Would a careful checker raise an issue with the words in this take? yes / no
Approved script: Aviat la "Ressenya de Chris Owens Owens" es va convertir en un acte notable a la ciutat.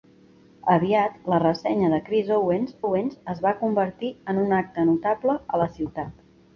no